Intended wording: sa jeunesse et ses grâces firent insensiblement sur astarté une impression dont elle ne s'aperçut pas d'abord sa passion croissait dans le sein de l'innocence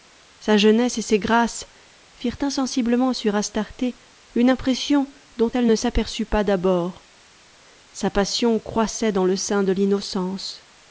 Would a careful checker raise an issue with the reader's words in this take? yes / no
no